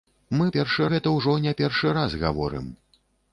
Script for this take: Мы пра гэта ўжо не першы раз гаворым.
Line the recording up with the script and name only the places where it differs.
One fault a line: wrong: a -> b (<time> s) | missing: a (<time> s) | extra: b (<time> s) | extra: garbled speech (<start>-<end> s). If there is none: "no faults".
wrong: пра -> першы (0.6 s)